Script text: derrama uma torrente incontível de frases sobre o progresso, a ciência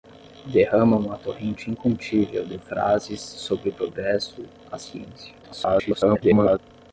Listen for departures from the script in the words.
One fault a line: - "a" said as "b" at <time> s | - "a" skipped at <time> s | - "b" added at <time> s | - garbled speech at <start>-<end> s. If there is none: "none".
- garbled speech at 5.4-6.6 s